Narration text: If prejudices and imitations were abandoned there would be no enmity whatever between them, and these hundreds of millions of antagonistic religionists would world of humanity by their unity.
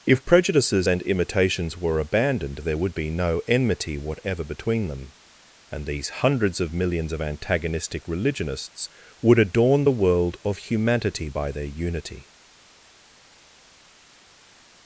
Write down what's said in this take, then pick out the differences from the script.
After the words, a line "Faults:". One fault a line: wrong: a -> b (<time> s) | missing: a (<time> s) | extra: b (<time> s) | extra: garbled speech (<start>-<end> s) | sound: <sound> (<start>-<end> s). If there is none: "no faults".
If prejudices and imitations were abandoned there would be no enmity whatever between them, and these hundreds of millions of antagonistic religionists would adorn the world of humanity by their unity.
Faults:
extra: adorn the (9.4 s)